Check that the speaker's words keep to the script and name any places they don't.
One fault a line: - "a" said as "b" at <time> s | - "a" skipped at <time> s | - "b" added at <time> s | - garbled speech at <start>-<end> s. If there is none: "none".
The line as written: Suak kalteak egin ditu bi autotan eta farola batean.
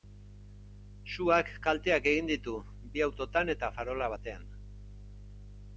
none